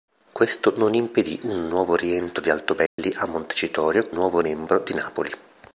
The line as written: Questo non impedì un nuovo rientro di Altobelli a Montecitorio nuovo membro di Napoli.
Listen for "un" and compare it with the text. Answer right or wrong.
right